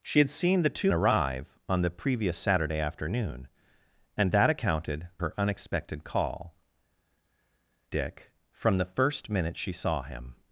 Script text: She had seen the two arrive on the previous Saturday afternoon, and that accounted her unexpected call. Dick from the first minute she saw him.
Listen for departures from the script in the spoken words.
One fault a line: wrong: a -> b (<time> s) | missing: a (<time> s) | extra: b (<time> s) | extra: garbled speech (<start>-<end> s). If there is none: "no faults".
no faults